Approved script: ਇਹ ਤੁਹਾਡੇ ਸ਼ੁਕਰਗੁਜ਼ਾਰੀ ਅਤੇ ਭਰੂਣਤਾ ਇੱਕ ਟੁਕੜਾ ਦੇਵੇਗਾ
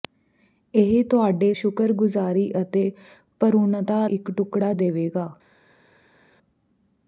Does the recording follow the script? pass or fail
pass